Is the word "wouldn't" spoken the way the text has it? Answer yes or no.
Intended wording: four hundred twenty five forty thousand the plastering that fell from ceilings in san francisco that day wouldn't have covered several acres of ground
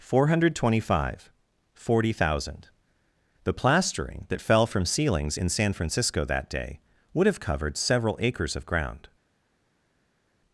no